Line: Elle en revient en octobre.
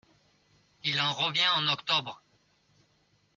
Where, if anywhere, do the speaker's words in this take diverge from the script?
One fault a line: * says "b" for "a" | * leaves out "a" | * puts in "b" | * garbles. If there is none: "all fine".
* says "Il" for "Elle"